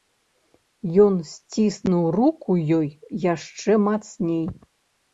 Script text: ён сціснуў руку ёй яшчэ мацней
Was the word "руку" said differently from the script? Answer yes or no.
no